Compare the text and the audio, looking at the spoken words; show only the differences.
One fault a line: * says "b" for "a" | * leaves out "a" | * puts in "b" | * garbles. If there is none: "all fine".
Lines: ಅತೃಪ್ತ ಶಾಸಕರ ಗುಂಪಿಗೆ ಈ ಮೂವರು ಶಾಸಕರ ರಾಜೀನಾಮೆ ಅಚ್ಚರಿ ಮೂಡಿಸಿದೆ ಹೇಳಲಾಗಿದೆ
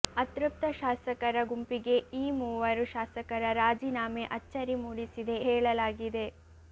all fine